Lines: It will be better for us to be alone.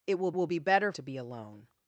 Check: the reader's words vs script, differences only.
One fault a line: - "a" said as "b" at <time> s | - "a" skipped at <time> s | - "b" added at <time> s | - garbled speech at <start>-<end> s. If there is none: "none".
- "will" added at 0.3 s
- "for us" skipped at 0.9 s